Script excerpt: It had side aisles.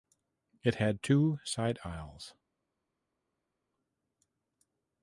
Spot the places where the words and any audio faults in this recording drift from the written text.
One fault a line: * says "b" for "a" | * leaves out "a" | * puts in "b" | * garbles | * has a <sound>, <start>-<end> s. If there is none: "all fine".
* puts in "two"